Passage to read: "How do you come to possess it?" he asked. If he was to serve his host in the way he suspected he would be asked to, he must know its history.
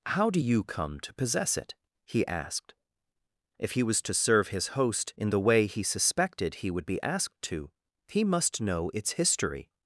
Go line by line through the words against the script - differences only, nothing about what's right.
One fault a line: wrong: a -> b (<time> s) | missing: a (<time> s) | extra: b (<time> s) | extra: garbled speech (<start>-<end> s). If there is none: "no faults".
no faults